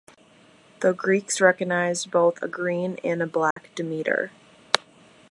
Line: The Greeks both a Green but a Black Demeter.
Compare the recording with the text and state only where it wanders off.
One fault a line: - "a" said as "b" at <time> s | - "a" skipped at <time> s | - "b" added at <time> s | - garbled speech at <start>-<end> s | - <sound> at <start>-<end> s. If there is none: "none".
- "recognized" added at 1.4 s
- "but" said as "and" at 3.0 s
- dropout at 3.5-3.6 s